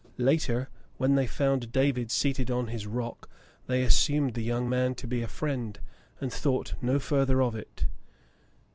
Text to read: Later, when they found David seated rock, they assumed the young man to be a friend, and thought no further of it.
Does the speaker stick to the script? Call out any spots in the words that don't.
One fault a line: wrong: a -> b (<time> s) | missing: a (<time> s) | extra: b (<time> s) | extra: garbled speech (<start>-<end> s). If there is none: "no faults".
extra: on his (2.5 s)